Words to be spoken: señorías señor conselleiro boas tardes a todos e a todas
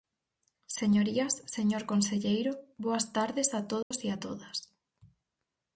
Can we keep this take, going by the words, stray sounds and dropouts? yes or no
no